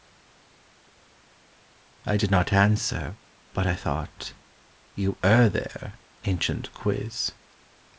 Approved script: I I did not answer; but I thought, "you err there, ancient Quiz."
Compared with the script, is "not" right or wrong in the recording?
right